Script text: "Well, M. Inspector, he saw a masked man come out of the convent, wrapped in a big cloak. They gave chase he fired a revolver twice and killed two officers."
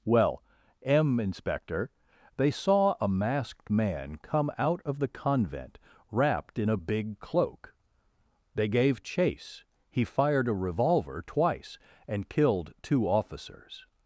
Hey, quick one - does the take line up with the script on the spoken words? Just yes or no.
no